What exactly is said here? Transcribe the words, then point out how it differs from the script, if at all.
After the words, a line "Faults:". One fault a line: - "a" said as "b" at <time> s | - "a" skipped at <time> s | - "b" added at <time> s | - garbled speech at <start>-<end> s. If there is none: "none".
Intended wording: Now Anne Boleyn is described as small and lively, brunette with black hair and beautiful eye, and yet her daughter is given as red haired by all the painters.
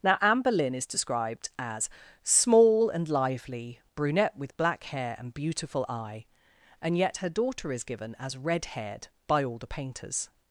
Now Anne Boleyn is described as small and lively, brunette with black hair and beautiful eye, and yet her daughter is given as red haired by all the painters.
Faults:
none